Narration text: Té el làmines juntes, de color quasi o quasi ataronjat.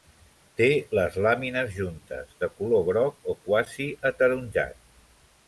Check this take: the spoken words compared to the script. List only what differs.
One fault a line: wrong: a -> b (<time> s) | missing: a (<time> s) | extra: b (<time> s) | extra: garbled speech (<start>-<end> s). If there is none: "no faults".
wrong: el -> les (1.0 s)
wrong: quasi -> groc (2.9 s)